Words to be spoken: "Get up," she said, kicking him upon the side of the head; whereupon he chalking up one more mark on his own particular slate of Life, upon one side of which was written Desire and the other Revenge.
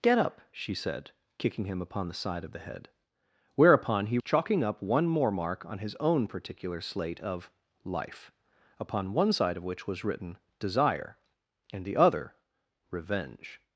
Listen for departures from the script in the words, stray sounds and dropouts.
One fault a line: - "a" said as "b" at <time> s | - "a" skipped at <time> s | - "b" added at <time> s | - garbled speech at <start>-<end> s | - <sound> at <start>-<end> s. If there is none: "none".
none